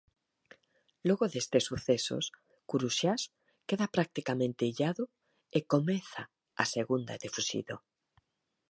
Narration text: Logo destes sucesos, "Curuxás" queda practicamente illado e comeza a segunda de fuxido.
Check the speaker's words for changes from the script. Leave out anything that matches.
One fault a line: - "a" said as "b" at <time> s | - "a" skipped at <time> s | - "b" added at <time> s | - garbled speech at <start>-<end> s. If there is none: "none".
none